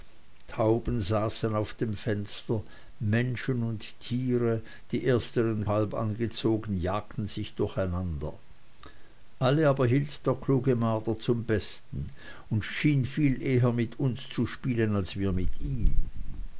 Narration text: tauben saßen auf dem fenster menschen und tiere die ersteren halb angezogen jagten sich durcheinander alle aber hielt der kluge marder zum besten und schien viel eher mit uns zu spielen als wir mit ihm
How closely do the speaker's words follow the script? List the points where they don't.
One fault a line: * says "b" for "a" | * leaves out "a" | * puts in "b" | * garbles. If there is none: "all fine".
all fine